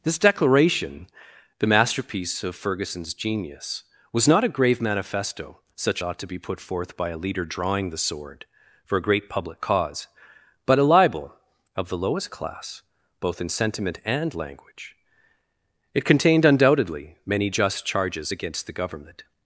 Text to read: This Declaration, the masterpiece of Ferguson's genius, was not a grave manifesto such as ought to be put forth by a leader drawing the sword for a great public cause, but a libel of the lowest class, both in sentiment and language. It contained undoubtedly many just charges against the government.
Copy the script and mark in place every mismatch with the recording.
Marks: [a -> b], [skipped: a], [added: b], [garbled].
This Declaration, the masterpiece of Ferguson's genius, was not a grave manifesto such [skipped: as] ought to be put forth by a leader drawing the sword for a great public cause, but a libel of the lowest class, both in sentiment and language. It contained undoubtedly many just charges against the government.